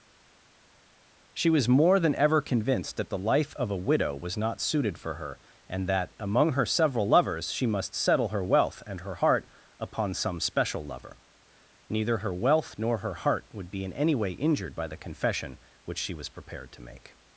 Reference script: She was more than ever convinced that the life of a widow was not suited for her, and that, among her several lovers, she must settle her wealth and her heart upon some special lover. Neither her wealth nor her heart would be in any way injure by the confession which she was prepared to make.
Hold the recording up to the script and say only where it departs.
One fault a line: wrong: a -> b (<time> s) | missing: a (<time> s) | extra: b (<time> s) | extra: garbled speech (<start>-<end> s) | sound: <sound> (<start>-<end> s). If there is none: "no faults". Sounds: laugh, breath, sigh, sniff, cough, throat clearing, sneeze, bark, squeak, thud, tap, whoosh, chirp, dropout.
wrong: injure -> injured (14.3 s)